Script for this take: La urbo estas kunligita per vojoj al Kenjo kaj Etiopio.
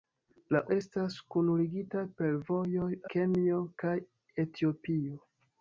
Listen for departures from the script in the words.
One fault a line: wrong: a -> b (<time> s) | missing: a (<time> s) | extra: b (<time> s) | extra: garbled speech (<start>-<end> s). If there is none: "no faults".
missing: urbo (0.6 s)
missing: al (2.9 s)